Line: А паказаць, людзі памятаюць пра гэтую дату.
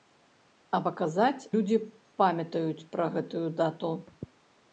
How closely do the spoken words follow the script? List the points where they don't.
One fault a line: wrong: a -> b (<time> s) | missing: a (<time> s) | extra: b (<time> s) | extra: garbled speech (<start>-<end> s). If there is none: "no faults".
no faults